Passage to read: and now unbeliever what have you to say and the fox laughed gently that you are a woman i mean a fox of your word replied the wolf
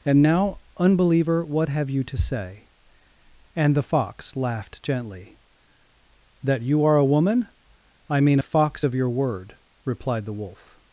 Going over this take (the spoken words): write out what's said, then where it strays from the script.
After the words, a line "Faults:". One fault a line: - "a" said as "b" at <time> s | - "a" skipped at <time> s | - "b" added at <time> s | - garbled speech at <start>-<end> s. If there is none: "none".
and now unbeliever what have you to say and the fox laughed gently that you are a woman i mean a fox of your word replied the wolf
Faults:
none